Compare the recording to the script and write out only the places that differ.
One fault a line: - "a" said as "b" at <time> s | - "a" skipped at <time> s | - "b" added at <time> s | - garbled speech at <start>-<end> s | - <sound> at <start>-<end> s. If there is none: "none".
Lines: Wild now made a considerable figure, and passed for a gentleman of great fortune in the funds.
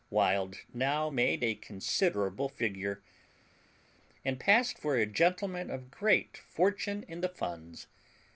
none